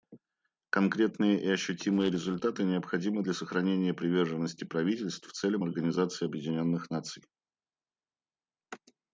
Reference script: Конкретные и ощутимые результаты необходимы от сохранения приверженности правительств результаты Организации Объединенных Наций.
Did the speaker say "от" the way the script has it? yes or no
no